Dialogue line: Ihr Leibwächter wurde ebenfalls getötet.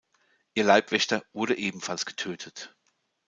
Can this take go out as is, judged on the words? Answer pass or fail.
pass